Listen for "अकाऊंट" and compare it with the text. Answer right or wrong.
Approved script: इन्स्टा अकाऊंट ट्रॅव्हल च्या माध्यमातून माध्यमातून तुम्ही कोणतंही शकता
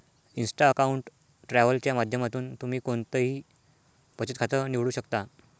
right